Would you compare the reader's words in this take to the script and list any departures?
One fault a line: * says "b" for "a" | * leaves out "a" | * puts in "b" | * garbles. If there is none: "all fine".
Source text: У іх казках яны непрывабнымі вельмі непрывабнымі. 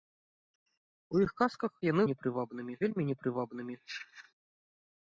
all fine